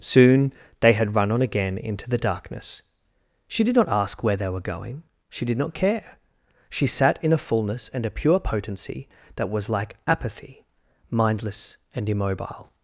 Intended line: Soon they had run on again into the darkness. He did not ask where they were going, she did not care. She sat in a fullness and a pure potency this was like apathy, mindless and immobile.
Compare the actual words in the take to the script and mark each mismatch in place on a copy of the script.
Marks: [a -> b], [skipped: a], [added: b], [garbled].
Soon they had run on again into the darkness. [He -> She] did not ask where they were going, she did not care. She sat in a fullness and a pure potency [this -> that] was like apathy, mindless and immobile.